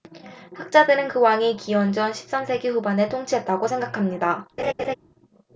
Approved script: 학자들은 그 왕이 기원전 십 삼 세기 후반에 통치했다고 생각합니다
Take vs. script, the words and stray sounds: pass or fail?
fail